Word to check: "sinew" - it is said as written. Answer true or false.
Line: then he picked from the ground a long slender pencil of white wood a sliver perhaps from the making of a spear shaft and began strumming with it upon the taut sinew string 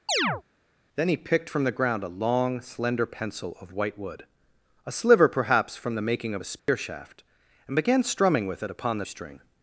false